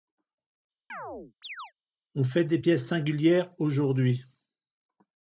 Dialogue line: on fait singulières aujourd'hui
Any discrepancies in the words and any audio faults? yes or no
yes